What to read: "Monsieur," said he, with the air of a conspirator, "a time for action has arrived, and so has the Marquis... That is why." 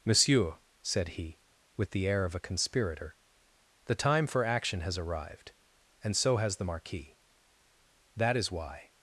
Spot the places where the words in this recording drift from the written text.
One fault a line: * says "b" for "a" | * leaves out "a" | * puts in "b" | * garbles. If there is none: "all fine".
* says "the" for "a"